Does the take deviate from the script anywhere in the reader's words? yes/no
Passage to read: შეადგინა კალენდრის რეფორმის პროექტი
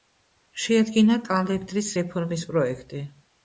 no